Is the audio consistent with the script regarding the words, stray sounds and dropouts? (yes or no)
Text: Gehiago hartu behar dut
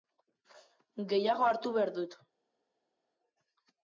yes